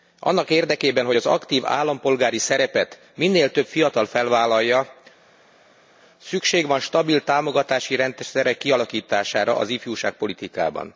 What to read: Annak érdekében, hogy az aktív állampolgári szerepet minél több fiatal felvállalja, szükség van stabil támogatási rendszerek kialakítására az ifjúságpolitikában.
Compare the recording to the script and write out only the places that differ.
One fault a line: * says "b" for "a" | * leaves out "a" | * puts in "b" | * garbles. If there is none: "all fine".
all fine